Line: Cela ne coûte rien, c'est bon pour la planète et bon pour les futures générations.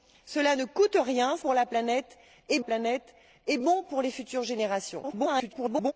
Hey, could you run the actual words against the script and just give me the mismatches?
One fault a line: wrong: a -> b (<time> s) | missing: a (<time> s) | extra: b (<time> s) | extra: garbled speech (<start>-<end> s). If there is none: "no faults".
wrong: c'est bon pour la -> pour la planète et (1.4 s)
extra: garbled speech (5.0-5.9 s)